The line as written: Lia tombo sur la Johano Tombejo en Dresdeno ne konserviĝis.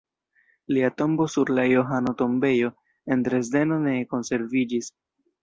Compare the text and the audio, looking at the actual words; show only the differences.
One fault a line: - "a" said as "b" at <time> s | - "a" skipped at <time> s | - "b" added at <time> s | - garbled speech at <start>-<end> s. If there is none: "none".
none